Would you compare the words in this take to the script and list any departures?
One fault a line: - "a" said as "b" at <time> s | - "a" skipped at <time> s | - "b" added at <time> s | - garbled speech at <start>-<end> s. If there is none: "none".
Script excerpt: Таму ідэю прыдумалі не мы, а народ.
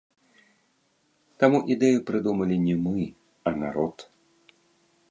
none